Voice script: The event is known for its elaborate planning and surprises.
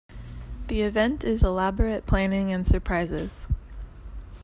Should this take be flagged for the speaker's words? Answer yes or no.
yes